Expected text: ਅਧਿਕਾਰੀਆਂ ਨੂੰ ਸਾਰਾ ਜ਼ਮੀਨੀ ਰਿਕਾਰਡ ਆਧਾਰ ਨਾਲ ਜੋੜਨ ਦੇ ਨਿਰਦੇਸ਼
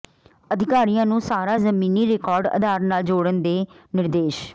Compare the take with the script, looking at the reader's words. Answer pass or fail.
pass